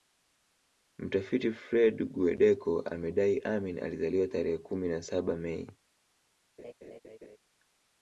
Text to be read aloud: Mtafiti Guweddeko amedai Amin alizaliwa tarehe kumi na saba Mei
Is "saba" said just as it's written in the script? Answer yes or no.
yes